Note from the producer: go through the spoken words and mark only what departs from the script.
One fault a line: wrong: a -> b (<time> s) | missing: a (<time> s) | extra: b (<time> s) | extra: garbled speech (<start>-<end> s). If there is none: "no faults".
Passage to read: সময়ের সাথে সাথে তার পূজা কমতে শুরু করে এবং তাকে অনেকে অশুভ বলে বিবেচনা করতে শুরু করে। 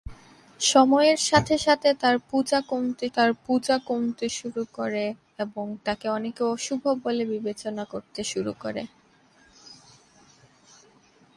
extra: তার পূজা কমতে (3.1 s)